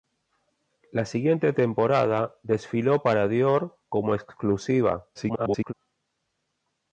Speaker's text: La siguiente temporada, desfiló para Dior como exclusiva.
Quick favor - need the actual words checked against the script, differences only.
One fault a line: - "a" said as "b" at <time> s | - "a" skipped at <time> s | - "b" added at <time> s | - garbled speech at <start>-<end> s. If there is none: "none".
- garbled speech at 5.1-5.7 s